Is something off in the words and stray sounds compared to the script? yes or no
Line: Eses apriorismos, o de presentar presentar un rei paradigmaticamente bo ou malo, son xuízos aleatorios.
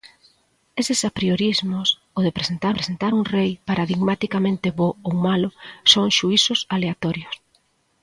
no